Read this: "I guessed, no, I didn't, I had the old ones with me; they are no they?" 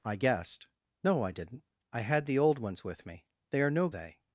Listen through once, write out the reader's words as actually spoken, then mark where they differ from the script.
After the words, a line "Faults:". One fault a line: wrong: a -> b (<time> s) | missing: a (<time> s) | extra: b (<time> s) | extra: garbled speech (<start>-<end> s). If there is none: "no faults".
"I guessed, no, I didn't, I had the old ones with me; they are no they?"
Faults:
no faults